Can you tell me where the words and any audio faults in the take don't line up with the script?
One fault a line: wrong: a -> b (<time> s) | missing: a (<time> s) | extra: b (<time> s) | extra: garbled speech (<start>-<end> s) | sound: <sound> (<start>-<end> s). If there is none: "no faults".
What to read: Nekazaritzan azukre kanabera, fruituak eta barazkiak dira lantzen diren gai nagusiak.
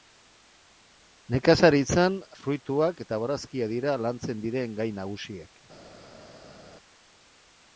missing: azukre kanabera (2.1 s)